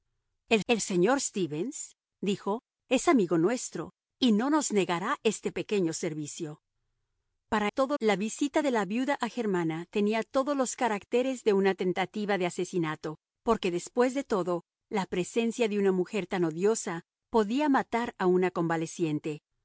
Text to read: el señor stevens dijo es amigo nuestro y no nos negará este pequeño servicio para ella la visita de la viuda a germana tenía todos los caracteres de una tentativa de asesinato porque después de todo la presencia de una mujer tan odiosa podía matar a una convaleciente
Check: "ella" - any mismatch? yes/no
yes